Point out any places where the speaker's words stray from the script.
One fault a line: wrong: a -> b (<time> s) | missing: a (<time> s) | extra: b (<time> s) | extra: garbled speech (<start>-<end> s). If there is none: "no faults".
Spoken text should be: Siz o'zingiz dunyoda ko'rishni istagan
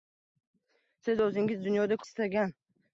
missing: ko'rishni (2.0 s)